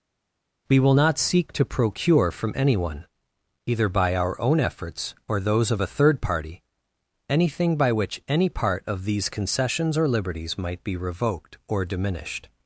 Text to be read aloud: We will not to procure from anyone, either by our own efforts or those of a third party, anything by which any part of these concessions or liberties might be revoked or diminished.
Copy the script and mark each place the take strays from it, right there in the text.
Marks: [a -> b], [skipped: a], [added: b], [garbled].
We will not [added: seek] to procure from anyone, either by our own efforts or those of a third party, anything by which any part of these concessions or liberties might be revoked or diminished.